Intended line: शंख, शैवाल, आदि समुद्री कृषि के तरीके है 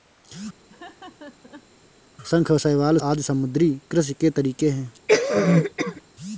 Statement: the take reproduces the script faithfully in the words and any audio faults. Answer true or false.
false